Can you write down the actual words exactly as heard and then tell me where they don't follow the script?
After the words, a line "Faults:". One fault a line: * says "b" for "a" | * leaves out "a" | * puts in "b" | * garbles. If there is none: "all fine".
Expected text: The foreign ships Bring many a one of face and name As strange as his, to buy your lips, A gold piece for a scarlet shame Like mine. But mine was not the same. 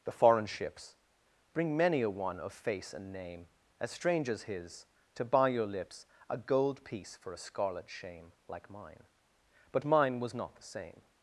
The foreign ships Bring many a one of face and name As strange as his, to buy your lips, A gold piece for a scarlet shame Like mine. But mine was not the same.
Faults:
all fine